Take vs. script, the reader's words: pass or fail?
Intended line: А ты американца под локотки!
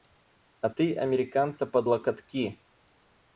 pass